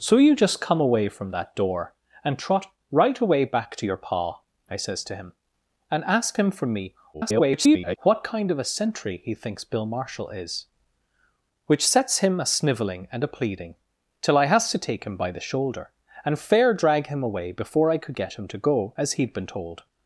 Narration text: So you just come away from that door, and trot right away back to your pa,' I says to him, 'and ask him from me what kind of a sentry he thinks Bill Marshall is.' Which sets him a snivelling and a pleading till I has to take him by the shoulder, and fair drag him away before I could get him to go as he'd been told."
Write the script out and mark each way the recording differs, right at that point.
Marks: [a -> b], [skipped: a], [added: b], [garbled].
So you just come away from that door, and trot right away back to your pa,' I says to him, 'and ask him from me [garbled] what kind of a sentry he thinks Bill Marshall is.' Which sets him a snivelling and a pleading till I has to take him by the shoulder, and fair drag him away before I could get him to go as he'd been told."